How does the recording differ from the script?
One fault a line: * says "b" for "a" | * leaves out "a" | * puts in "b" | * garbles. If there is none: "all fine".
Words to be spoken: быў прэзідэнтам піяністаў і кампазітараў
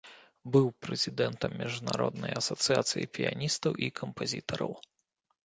* puts in "міжнароднай асацыяцыі"